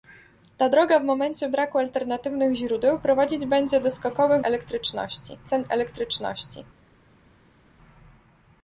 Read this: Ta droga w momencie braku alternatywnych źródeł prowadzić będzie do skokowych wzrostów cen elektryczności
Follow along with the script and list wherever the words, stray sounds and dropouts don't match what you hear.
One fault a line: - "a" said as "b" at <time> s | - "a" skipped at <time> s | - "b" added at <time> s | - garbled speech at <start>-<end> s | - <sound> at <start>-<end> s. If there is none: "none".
- "wzrostów" said as "elektryczności" at 4.4 s